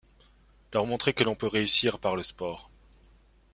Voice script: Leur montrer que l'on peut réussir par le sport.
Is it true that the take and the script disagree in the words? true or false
false